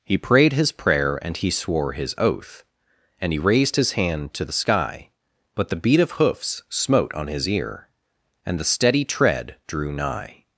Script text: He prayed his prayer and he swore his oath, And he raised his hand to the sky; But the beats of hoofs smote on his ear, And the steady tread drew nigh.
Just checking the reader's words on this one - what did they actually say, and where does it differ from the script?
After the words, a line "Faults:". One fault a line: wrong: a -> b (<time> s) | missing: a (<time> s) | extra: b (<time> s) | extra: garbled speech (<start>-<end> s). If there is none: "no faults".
He prayed his prayer and he swore his oath, And he raised his hand to the sky; But the beat of hoofs smote on his ear, And the steady tread drew nigh.
Faults:
wrong: beats -> beat (5.8 s)